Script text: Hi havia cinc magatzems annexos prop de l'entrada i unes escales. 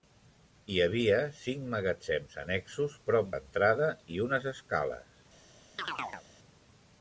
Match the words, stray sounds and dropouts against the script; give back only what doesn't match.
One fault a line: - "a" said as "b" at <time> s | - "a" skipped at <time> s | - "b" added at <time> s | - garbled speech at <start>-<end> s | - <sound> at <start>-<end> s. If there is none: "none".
- "de" skipped at 3.3 s
- chirp at 5.8-6.3 s